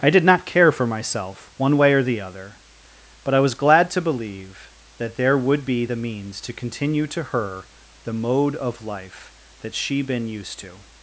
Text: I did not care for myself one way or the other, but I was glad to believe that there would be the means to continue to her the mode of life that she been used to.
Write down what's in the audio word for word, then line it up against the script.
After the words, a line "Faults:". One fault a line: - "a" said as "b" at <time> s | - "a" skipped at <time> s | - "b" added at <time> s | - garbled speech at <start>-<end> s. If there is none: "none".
I did not care for myself one way or the other, but I was glad to believe that there would be the means to continue to her the mode of life that she been used to.
Faults:
none